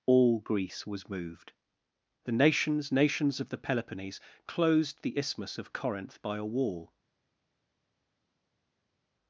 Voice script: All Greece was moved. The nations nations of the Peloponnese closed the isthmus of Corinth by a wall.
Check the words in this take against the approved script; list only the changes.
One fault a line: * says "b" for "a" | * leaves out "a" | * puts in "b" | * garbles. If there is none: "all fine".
all fine